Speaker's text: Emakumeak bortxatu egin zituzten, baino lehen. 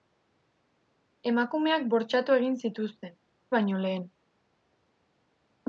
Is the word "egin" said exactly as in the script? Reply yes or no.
yes